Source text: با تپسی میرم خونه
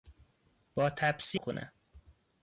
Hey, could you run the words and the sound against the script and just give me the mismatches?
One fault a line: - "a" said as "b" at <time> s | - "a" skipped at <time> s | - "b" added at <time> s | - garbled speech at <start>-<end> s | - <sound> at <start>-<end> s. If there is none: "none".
- "میرم" skipped at 1.4 s